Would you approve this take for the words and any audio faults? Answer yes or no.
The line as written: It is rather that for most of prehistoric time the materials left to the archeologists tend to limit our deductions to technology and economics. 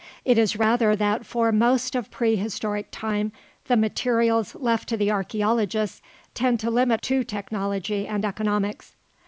no